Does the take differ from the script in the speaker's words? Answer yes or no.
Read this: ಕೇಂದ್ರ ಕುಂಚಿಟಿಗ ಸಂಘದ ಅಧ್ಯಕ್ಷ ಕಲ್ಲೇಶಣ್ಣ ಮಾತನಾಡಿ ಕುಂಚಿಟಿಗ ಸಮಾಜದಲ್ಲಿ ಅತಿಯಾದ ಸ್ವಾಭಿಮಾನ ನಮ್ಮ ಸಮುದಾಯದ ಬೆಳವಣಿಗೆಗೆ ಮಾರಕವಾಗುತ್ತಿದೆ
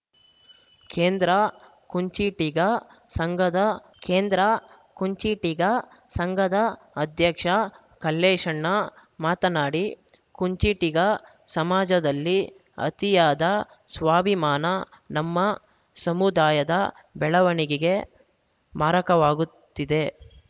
yes